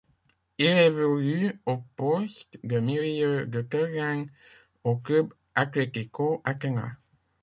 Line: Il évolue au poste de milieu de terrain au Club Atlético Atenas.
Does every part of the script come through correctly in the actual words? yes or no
yes